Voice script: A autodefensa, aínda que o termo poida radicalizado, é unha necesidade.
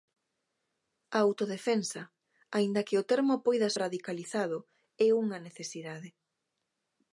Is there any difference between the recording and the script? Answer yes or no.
no